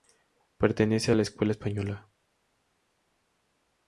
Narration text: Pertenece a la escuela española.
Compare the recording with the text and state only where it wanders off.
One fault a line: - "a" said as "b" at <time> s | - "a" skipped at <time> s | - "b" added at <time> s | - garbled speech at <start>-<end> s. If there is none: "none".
none